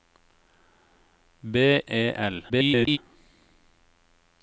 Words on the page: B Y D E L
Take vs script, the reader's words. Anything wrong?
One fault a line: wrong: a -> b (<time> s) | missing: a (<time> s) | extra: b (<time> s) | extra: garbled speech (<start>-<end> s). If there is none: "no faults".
missing: Y D (1.8 s)
extra: garbled speech (2.5-3.0 s)